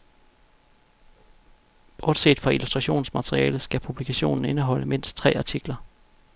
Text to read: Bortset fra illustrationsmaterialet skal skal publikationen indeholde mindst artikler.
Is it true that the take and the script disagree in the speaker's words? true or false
true